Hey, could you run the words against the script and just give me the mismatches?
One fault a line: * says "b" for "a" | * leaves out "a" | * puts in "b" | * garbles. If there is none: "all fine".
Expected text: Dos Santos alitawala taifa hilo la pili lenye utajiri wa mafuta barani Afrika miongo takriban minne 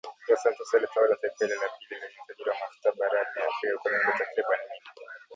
* puts in "kwa"